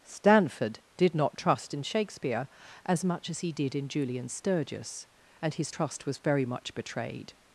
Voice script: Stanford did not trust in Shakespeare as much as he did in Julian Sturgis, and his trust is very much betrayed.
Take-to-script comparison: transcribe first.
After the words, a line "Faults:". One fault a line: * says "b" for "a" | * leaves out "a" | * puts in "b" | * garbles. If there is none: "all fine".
Stanford did not trust in Shakespeare as much as he did in Julian Sturgis, and his trust was very much betrayed.
Faults:
* says "was" for "is"